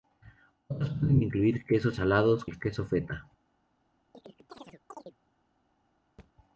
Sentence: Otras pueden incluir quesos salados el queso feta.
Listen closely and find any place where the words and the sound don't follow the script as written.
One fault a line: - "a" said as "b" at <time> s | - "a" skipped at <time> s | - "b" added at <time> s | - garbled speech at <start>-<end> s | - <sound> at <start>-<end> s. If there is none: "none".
- chirp at 4.1-5.2 s
- thud at 6.2-6.3 s